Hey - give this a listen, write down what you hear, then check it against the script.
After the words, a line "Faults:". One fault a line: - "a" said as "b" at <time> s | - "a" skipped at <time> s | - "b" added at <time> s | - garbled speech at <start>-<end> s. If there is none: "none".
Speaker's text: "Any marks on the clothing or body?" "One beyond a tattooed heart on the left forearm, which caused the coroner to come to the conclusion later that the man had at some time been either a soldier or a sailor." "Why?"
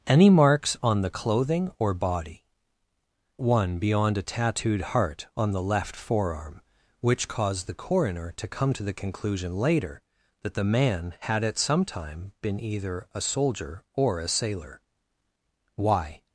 "Any marks on the clothing or body?" "One beyond a tattooed heart on the left forearm, which caused the coroner to come to the conclusion later that the man had at some time been either a soldier or a sailor." "Why?"
Faults:
none